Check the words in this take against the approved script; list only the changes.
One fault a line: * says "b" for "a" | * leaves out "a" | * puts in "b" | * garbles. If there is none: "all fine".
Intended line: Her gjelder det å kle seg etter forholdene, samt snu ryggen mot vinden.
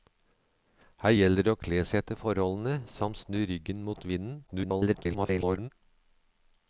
* garbles